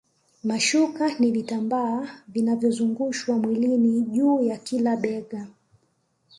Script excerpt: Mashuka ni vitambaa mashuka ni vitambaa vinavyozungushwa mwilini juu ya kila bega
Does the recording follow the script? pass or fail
fail